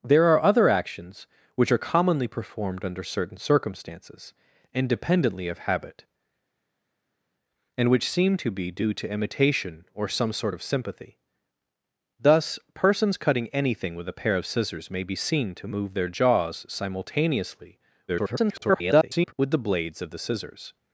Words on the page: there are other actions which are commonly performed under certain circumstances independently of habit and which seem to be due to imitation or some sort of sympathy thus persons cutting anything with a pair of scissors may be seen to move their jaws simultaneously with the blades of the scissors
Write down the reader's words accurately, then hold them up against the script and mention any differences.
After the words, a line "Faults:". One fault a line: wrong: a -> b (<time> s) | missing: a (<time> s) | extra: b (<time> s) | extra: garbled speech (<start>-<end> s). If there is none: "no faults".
there are other actions which are commonly performed under certain circumstances independently of habit and which seem to be due to imitation or some sort of sympathy thus persons cutting anything with a pair of scissors may be seen to move their jaws simultaneously [garbled] with the blades of the scissors
Faults:
extra: garbled speech (18.1-19.3 s)